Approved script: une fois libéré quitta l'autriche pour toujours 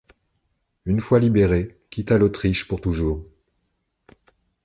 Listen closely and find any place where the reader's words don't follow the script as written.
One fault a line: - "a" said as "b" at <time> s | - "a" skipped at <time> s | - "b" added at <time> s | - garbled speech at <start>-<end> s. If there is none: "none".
none